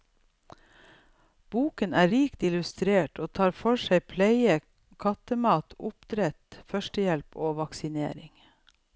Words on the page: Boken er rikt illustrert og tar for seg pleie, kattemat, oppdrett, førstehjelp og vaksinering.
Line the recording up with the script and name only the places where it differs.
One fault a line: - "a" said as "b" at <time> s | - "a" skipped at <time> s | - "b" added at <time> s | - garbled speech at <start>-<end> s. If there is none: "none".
none